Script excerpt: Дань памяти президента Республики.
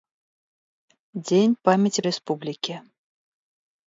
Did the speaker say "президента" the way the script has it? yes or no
no